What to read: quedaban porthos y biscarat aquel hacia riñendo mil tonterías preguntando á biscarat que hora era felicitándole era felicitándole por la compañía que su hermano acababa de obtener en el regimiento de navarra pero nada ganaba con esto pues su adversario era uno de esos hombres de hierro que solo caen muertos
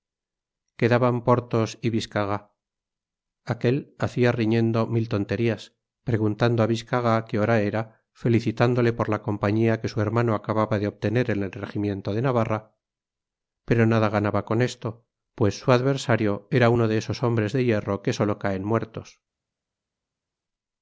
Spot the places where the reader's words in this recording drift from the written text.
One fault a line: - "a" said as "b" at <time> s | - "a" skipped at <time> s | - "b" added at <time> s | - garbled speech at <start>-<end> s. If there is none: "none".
- "era felicitándole" skipped at 8.9 s